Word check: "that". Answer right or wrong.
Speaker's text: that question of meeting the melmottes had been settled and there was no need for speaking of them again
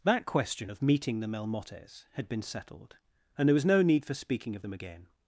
right